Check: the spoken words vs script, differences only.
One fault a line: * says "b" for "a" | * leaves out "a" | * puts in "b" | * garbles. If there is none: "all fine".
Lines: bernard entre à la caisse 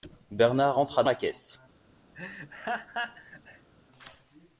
all fine